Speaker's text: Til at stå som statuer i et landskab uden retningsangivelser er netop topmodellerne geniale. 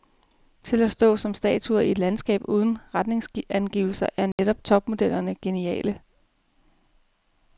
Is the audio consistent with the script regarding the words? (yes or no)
yes